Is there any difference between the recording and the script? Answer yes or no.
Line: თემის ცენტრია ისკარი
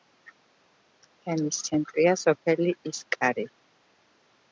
yes